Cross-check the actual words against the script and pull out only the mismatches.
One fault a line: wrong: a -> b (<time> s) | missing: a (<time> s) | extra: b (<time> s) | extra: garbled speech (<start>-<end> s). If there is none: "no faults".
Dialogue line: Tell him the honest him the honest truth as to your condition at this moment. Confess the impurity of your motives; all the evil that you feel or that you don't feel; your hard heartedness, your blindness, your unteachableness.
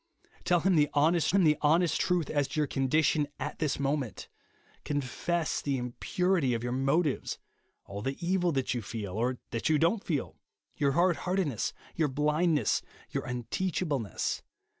no faults